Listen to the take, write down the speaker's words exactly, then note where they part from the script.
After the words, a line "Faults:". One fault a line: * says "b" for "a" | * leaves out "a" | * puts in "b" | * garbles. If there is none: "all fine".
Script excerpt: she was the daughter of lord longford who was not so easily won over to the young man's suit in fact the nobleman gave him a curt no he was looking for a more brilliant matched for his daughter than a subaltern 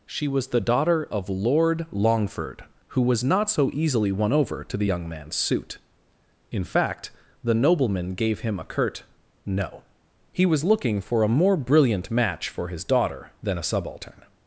she was the daughter of lord longford who was not so easily won over to the young man's suit in fact the nobleman gave him a curt no he was looking for a more brilliant match for his daughter than a subaltern
Faults:
* says "match" for "matched"